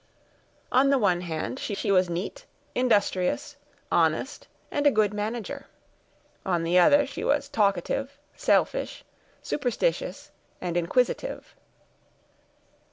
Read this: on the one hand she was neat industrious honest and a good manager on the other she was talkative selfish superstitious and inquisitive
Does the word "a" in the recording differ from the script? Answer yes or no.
no